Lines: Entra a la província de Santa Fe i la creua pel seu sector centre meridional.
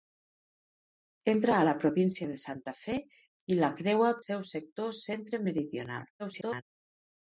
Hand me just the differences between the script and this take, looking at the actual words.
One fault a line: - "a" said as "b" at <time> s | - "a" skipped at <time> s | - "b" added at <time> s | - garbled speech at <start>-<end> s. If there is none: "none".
- "pel" skipped at 4.1 s
- garbled speech at 6.2-6.6 s